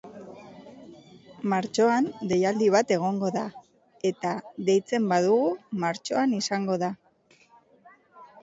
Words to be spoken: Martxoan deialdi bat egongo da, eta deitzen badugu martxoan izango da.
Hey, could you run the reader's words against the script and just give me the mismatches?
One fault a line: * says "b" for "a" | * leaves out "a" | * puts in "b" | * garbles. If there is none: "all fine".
all fine